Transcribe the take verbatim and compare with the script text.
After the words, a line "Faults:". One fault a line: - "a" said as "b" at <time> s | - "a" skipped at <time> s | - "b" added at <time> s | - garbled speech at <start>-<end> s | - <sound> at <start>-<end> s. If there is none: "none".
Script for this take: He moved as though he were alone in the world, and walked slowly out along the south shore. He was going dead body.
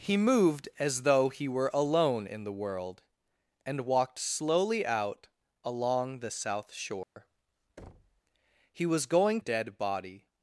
He moved as though he were alone in the world, and walked slowly out along the south shore. He was going dead body.
Faults:
- dropout at 7.0-7.2 s
- thud at 7.8-8.2 s